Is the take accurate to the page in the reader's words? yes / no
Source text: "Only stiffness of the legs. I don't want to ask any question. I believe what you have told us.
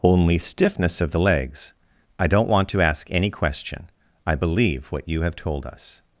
yes